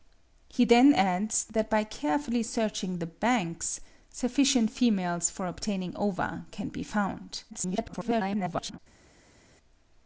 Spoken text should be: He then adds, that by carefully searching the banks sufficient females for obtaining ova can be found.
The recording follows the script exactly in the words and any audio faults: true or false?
false